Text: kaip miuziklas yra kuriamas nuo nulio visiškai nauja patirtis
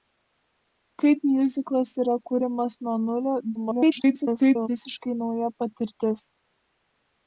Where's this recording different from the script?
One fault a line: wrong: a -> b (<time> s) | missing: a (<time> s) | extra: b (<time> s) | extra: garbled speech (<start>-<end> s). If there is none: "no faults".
extra: garbled speech (3.5-4.7 s)